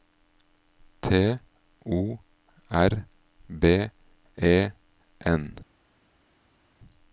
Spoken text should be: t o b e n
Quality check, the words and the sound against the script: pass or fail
fail